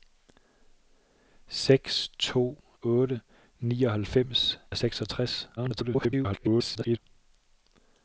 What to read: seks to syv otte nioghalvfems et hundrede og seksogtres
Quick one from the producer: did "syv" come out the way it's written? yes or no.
no